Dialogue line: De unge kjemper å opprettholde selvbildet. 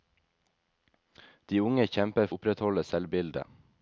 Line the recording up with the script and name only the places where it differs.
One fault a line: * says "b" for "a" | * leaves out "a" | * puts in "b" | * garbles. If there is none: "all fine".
all fine